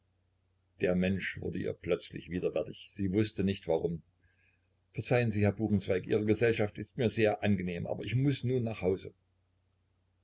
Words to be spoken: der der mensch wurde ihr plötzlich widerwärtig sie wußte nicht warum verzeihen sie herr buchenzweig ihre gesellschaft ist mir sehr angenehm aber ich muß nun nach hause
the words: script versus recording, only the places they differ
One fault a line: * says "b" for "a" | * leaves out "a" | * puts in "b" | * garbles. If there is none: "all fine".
* leaves out "der"